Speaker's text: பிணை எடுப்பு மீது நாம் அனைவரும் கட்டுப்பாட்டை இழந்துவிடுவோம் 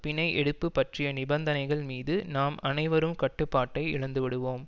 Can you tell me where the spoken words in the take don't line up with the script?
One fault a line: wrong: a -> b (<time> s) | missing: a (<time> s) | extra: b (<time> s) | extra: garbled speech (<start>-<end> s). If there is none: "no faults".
extra: பற்றிய நிபந்தனைகள் (0.7 s)